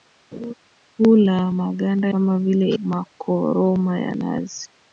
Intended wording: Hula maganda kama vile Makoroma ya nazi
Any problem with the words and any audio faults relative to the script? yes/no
yes